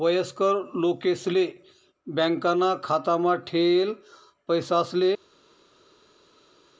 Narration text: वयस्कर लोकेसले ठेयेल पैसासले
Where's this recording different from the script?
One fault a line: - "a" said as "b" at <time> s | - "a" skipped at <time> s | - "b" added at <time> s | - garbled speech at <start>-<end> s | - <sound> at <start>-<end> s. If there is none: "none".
- "बॅकाना खातामा" added at 2.1 s